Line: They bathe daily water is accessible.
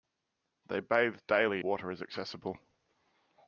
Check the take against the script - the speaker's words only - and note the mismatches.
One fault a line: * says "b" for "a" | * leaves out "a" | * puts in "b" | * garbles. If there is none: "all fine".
all fine